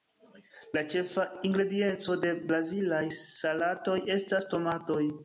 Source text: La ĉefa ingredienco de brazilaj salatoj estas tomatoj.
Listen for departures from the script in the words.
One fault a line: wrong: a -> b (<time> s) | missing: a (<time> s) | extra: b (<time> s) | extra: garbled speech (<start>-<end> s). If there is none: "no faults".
no faults